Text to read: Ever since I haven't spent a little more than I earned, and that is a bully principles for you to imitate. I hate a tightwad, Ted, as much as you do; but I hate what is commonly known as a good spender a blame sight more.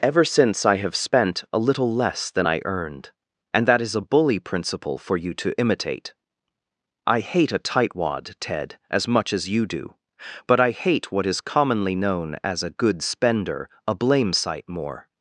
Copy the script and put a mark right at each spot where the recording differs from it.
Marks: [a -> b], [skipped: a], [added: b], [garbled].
Ever since I [haven't -> have] spent a little [more -> less] than I earned, and that is a bully [principles -> principle] for you to imitate. I hate a tightwad, Ted, as much as you do; but I hate what is commonly known as a good spender a blame sight more.